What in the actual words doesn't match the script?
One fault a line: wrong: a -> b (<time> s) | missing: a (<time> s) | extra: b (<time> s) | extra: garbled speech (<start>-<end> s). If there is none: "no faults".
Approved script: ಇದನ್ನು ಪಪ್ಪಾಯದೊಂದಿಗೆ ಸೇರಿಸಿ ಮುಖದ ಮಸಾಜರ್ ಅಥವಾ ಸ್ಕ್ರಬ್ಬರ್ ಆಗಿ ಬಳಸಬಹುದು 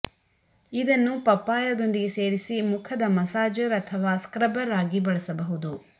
no faults